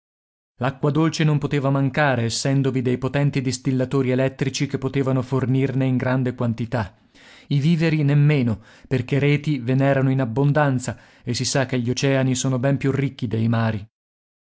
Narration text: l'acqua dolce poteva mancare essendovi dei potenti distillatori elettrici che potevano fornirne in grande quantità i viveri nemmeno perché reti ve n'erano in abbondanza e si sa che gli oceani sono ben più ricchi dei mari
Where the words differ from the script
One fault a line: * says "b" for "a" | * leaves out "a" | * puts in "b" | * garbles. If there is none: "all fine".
* puts in "non"